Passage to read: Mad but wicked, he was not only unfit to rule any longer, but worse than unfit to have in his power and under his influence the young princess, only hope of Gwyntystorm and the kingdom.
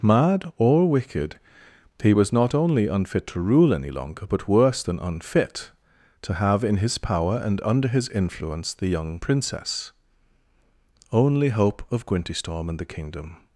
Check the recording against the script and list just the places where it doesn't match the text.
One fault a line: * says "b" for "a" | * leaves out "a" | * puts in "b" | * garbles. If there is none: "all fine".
* says "or" for "but"